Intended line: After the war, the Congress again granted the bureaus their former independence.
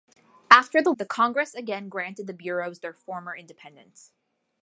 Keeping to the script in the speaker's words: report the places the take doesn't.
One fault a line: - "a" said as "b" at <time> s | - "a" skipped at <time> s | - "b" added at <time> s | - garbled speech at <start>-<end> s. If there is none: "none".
- "war" skipped at 0.9 s